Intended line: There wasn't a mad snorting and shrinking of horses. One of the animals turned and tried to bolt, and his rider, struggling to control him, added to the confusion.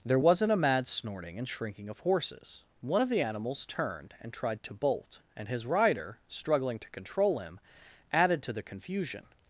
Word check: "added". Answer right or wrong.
right